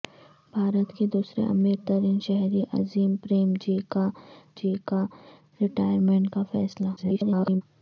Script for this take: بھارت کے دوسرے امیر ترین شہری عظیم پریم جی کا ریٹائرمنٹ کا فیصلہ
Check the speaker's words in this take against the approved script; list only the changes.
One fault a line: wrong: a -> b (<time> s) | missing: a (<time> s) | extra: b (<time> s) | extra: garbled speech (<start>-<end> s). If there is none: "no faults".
extra: جی کا (4.6 s)
extra: garbled speech (7.0-7.6 s)